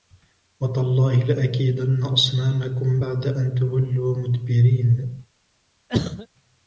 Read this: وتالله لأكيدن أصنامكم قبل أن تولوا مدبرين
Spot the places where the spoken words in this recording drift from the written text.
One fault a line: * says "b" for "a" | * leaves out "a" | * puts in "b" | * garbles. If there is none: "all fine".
* says "بعد" for "قبل"